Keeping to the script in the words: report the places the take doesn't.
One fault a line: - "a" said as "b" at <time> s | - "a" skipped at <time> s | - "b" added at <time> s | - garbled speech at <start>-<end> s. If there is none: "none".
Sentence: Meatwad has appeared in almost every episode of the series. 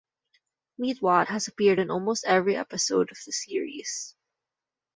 none